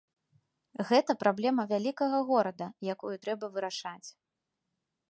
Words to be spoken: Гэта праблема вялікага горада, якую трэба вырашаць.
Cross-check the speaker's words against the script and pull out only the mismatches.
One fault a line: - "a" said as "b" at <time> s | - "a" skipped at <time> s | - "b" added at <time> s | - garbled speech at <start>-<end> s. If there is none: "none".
none